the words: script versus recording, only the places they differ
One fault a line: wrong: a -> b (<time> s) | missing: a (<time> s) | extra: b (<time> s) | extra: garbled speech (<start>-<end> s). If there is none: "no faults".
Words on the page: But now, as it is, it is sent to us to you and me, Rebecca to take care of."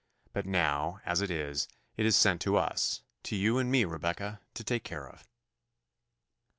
no faults